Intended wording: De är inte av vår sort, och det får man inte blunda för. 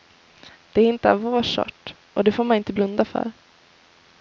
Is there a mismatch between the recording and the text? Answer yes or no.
no